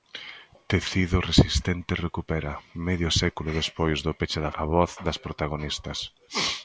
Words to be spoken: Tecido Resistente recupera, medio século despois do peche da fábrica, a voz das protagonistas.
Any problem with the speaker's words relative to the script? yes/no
yes